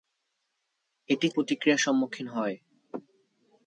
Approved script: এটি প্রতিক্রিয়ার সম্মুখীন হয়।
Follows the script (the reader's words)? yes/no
yes